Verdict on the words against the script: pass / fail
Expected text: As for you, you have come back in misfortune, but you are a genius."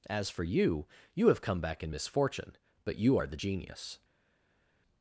fail